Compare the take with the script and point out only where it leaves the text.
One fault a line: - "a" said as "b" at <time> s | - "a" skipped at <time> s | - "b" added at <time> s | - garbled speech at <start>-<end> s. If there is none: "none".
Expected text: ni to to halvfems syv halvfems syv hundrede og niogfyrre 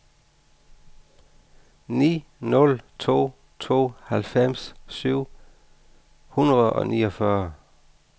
- "nul" added at 2.4 s
- "halvfems syv" skipped at 5.2 s